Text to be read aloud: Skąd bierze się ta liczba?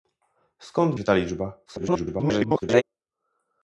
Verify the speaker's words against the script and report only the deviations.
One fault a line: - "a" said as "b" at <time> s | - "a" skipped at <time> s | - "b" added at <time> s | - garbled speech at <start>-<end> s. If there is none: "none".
- "bierze" skipped at 0.9 s
- garbled speech at 1.7-2.8 s